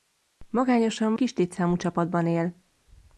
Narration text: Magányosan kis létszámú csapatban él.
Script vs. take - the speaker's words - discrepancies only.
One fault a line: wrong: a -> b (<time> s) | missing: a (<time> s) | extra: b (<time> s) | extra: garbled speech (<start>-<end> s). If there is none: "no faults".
no faults